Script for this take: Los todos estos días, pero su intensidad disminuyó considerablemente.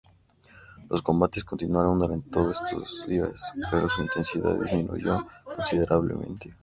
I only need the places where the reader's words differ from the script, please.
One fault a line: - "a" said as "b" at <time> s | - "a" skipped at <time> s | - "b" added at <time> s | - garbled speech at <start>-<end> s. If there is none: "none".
- "combates continuaron durante" added at 1.0 s